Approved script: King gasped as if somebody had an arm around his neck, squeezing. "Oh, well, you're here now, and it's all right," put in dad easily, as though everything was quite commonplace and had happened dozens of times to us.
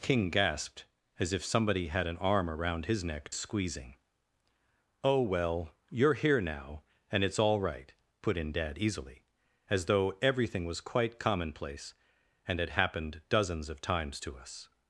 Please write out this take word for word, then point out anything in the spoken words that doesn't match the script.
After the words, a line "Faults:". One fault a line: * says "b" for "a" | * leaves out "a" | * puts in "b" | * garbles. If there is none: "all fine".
King gasped as if somebody had an arm around his neck, squeezing. "Oh, well, you're here now, and it's all right," put in dad easily, as though everything was quite commonplace and had happened dozens of times to us.
Faults:
all fine